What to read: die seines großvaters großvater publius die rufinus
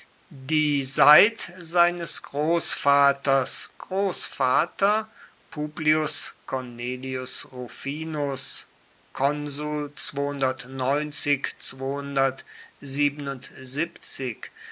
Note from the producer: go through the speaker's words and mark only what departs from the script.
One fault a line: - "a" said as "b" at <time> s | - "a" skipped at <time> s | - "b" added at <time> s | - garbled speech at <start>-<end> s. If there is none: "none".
- "seit" added at 0.8 s
- "die" said as "cornelius" at 6.5 s